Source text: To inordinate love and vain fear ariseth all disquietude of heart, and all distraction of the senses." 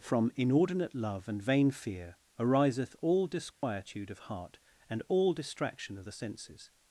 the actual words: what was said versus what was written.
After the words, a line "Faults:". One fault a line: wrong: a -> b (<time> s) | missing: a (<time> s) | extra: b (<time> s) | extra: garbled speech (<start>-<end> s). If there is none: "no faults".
From inordinate love and vain fear ariseth all disquietude of heart, and all distraction of the senses."
Faults:
wrong: To -> From (0.0 s)